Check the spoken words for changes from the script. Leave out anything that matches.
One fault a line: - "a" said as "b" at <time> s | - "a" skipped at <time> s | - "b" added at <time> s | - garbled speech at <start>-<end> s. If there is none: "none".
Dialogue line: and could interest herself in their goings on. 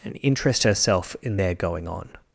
- "could" skipped at 0.2 s
- "goings" said as "going" at 1.5 s